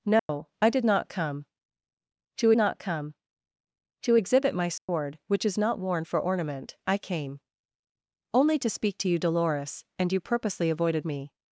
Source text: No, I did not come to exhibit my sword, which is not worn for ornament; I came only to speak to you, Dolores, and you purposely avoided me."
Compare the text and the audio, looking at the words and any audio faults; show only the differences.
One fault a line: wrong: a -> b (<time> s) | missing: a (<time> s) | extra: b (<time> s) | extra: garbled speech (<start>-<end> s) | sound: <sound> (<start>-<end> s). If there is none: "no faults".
sound: dropout (0.2-0.3 s)
extra: not come to (2.5 s)
sound: dropout (4.8-4.9 s)